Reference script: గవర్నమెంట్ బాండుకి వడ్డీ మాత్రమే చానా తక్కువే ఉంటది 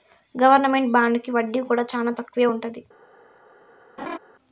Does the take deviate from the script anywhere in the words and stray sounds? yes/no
yes